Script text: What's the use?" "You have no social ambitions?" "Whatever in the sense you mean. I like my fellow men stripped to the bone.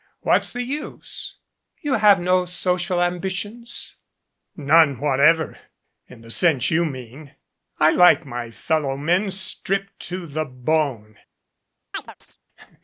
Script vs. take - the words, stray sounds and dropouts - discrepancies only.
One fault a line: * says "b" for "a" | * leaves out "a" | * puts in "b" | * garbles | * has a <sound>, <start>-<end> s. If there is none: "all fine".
* puts in "None"
* has a chirp, 11.9-12.4 s